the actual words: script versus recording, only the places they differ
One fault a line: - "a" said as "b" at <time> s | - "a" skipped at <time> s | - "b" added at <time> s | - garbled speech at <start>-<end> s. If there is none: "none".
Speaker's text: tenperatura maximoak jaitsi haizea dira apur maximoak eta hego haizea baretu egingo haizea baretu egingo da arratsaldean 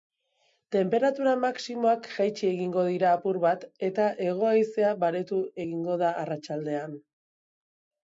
- "haizea" said as "egingo" at 2.5 s
- "maximoak" said as "bat" at 3.4 s
- "haizea baretu egingo" skipped at 6.0 s